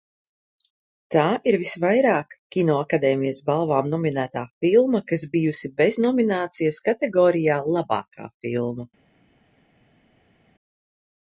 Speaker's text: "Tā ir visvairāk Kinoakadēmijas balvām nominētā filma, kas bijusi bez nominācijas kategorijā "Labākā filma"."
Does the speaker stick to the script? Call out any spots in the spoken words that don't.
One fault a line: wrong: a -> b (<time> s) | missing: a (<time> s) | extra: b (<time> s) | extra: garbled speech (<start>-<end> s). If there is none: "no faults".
no faults